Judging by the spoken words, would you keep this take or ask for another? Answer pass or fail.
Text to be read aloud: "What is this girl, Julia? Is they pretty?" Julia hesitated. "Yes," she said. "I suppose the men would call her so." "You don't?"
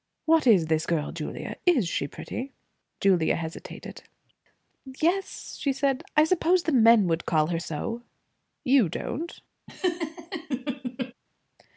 fail